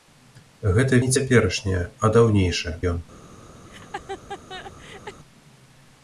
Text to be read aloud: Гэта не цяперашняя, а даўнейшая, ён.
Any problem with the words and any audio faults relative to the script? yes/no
yes